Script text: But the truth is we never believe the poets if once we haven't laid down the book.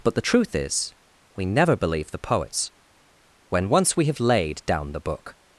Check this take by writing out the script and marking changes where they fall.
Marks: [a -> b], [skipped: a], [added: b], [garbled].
But the truth is we never believe the poets [if -> when] once we [haven't -> have] laid down the book.